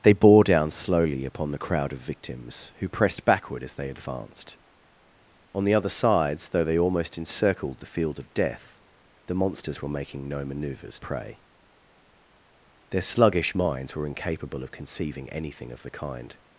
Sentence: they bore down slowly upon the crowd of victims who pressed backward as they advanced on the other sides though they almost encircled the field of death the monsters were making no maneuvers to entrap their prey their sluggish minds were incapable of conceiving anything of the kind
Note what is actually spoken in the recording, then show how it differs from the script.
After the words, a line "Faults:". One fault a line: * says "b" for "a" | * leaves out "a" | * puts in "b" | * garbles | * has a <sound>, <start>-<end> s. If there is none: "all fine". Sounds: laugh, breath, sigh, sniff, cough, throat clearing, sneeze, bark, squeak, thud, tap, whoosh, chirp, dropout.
they bore down slowly upon the crowd of victims who pressed backward as they advanced on the other sides though they almost encircled the field of death the monsters were making no maneuvers prey their sluggish minds were incapable of conceiving anything of the kind
Faults:
* leaves out "to entrap their"